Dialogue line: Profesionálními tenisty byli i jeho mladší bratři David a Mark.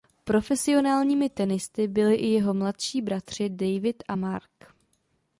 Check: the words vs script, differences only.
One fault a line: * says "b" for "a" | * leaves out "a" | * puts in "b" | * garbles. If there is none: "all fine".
all fine